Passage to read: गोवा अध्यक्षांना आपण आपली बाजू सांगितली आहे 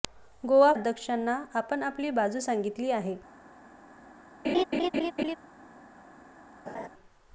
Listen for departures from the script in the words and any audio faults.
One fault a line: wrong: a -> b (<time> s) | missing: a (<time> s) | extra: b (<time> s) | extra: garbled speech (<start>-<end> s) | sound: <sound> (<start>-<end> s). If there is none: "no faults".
sound: laugh (4.4-5.4 s)
sound: laugh (6.7-6.9 s)